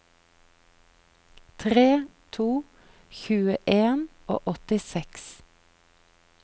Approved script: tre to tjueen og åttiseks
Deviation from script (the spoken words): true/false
false